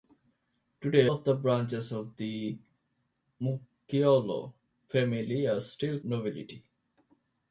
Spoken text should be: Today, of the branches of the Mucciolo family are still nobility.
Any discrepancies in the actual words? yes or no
no